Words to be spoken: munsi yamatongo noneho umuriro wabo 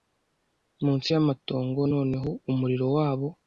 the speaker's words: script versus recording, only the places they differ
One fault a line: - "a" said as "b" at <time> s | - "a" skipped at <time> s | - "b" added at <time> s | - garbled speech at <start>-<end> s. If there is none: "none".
none